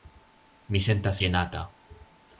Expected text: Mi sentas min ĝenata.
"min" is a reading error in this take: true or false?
true